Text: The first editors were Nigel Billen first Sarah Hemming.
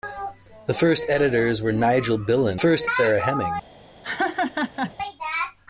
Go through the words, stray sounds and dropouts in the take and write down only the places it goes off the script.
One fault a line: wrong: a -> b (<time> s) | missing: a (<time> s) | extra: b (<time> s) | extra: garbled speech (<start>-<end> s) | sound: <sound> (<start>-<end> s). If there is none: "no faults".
sound: laugh (4.0-4.9 s)